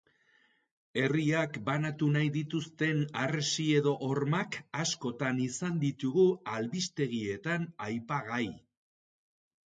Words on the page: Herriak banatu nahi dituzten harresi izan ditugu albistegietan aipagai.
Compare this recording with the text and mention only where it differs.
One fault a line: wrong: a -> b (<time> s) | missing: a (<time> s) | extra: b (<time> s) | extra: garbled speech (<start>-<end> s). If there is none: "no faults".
extra: edo hormak askotan (3.8 s)